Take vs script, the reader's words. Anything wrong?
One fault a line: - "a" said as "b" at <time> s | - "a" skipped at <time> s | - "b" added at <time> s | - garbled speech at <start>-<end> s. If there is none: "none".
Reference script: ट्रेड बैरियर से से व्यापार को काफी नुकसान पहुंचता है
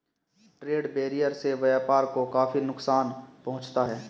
- "से" skipped at 1.5 s